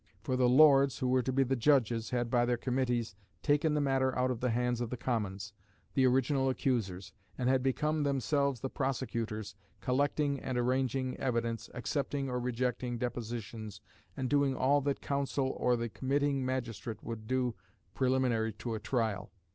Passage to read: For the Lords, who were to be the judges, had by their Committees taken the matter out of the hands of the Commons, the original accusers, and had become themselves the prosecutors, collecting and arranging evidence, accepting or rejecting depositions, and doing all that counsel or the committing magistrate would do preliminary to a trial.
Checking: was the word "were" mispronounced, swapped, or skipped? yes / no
no